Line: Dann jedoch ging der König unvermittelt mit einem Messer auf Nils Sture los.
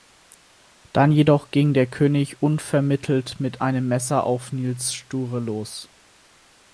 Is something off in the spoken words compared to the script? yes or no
no